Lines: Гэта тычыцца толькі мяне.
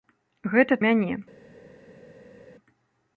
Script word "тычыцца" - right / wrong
wrong